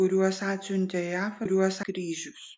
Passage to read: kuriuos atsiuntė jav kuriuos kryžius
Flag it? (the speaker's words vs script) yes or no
no